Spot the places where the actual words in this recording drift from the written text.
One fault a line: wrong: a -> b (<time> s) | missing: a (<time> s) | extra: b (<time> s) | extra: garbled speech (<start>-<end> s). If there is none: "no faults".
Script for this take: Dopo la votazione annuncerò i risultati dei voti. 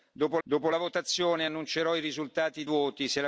extra: dopo (0.4 s)
missing: dei (2.6 s)